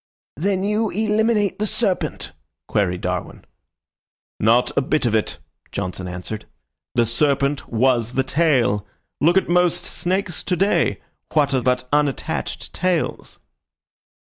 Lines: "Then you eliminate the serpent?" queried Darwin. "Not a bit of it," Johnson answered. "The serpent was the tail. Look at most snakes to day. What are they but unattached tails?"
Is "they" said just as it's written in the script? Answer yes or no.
no